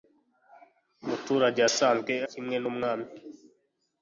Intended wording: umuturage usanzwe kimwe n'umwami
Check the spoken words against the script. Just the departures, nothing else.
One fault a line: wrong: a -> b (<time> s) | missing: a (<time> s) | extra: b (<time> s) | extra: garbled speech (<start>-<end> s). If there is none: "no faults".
no faults